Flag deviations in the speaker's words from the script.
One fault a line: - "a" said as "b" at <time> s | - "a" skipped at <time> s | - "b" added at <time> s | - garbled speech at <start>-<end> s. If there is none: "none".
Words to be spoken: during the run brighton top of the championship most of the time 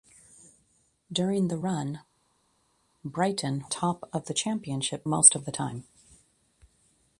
none